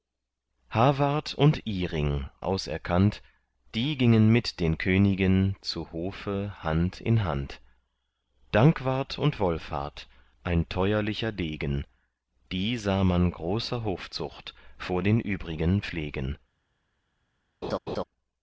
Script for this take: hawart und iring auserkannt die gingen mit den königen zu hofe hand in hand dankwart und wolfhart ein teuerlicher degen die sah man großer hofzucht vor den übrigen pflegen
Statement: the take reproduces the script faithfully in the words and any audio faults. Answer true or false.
false